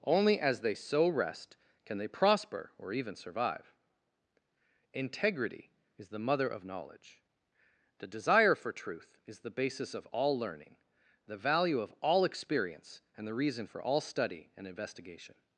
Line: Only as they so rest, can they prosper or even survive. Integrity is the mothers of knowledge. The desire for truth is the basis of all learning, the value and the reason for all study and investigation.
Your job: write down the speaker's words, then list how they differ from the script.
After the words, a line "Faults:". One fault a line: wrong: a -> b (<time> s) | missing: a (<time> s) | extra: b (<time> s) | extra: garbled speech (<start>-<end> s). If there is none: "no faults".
Only as they so rest, can they prosper or even survive. Integrity is the mother of knowledge. The desire for truth is the basis of all learning, the value of all experience and the reason for all study and investigation.
Faults:
wrong: mothers -> mother (6.2 s)
extra: of all experience (11.8 s)